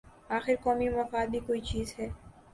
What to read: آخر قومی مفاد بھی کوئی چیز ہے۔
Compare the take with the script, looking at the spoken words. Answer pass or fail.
pass